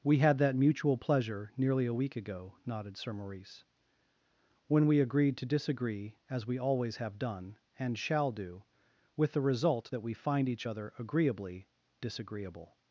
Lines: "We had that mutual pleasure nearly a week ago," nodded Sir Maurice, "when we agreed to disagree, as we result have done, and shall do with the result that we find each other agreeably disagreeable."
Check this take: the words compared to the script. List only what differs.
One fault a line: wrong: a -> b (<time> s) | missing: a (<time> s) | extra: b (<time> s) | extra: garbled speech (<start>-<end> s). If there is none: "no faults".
wrong: result -> always (6.6 s)